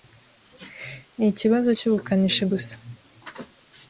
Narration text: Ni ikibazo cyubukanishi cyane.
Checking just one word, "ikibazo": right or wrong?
right